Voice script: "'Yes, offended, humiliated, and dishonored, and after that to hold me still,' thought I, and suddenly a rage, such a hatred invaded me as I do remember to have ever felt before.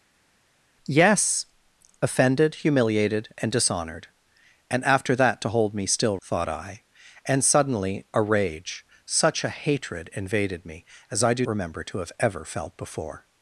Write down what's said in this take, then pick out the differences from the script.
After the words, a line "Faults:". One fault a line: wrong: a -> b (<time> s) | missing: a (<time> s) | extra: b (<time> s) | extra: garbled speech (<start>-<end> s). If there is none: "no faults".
"'Yes, offended, humiliated, and dishonored, and after that to hold me still,' thought I, and suddenly a rage, such a hatred invaded me as I do remember to have ever felt before.
Faults:
no faults